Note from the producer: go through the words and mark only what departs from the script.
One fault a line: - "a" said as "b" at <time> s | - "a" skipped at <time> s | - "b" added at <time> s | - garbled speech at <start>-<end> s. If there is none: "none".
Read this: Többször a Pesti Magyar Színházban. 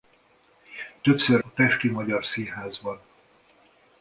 none